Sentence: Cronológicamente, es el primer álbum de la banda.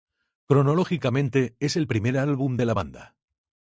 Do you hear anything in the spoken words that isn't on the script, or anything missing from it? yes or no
no